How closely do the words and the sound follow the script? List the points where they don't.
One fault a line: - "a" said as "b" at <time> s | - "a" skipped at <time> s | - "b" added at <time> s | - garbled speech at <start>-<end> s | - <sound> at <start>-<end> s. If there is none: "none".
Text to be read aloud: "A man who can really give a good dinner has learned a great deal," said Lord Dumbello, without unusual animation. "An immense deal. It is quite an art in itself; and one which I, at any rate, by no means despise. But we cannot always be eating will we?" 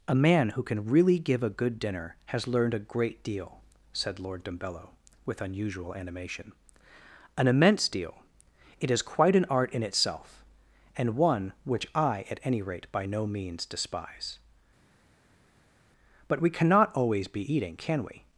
- "without" said as "with" at 5.3 s
- "will" said as "can" at 17.7 s